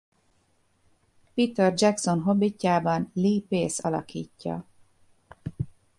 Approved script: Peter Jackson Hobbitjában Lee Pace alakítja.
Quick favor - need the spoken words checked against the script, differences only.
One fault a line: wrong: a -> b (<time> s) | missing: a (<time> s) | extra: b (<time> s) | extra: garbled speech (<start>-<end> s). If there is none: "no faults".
no faults